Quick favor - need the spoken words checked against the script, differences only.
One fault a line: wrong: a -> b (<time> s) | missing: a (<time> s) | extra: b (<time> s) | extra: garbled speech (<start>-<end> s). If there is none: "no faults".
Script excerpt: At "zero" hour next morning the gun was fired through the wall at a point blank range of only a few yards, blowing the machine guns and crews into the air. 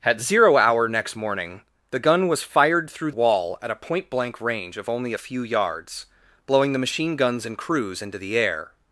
missing: the (3.1 s)